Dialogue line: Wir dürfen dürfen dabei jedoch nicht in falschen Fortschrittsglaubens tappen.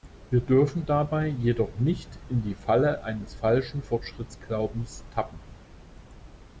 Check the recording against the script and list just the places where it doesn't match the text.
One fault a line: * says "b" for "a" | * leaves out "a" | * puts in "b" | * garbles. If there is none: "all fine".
* leaves out "dürfen"
* puts in "die Falle eines"